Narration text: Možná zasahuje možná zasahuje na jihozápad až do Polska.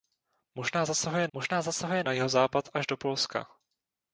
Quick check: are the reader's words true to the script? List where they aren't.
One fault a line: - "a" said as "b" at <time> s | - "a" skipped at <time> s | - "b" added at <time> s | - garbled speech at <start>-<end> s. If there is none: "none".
none